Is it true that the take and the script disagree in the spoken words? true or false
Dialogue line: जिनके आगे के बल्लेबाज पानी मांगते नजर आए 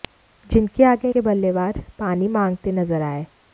false